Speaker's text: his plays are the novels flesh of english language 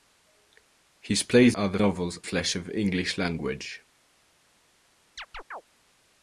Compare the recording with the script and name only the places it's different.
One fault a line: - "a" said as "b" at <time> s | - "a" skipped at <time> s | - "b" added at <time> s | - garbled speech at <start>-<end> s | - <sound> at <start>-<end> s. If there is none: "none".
- chirp at 5.2-5.6 s